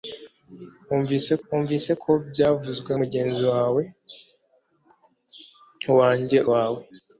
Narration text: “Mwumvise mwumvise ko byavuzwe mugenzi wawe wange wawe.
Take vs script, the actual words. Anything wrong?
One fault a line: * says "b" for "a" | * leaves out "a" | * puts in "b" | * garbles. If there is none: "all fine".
all fine